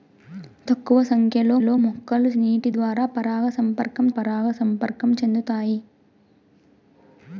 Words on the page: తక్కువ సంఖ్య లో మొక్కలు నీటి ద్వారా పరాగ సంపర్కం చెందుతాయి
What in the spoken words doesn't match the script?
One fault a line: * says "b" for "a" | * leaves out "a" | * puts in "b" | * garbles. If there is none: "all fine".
* puts in "లో"
* puts in "పరాగ సంపర్కం"